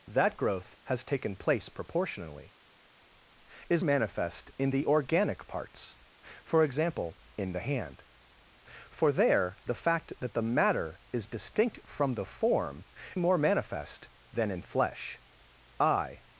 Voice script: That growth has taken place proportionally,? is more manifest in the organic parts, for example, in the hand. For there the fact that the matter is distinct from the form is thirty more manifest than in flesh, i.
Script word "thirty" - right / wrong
wrong